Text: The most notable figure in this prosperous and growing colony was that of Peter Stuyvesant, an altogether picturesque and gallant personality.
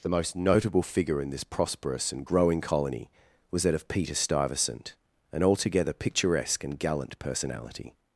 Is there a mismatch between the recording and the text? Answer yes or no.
no